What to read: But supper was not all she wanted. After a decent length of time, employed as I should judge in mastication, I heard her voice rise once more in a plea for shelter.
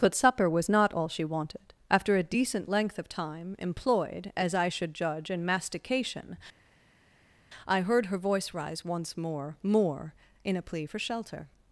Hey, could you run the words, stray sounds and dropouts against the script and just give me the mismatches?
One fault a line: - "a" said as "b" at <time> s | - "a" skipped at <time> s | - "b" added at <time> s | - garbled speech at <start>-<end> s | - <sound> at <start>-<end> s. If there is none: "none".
- "more" added at 9.6 s